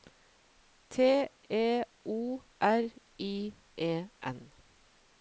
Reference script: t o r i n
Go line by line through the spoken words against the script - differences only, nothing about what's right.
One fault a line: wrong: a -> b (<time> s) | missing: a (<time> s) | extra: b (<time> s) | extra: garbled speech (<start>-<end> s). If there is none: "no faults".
extra: e (1.5 s)
extra: e (3.8 s)